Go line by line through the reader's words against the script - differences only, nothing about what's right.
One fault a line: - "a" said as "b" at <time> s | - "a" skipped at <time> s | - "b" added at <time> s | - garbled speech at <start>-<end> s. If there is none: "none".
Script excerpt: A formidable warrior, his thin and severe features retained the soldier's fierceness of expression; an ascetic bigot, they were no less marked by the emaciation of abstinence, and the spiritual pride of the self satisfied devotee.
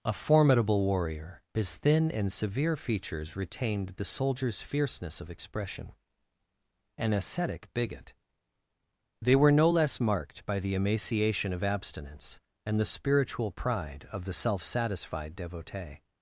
none